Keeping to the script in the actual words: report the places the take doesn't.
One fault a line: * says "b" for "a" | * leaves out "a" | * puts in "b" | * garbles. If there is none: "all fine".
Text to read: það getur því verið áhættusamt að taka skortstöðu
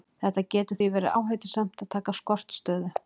all fine